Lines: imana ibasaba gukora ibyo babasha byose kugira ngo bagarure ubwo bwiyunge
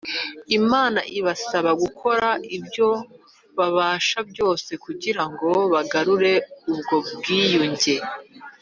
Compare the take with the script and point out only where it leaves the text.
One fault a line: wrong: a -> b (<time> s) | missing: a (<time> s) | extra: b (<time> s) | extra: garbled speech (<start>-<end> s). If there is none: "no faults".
no faults